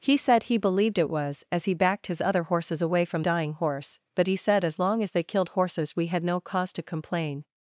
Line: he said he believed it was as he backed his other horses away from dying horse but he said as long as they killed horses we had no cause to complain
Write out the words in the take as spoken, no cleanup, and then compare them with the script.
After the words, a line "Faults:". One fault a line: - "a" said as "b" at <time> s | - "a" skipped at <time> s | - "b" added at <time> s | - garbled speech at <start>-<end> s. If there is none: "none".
he said he believed it was as he backed his other horses away from dying horse but he said as long as they killed horses we had no cause to complain
Faults:
none